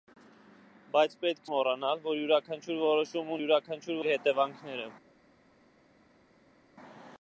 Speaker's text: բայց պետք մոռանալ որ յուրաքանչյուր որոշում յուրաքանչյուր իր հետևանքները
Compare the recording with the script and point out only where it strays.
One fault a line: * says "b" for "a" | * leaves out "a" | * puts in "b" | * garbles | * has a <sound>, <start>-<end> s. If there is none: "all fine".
all fine